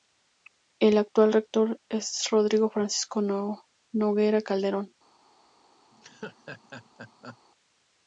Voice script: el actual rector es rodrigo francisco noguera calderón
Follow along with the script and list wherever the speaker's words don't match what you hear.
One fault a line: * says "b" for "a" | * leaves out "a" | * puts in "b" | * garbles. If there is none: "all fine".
all fine